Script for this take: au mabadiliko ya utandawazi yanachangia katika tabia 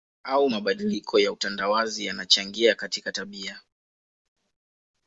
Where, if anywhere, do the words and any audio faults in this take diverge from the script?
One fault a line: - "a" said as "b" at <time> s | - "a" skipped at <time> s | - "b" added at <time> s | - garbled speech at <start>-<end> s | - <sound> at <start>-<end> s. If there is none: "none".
none